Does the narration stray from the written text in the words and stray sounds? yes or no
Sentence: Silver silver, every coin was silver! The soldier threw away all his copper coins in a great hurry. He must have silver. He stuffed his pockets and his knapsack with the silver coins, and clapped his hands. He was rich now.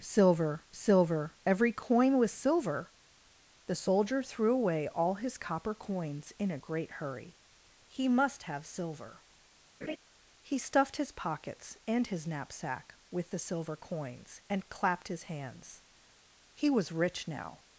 yes